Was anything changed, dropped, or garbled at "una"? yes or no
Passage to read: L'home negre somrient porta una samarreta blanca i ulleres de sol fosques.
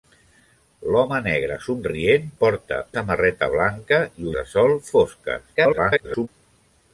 yes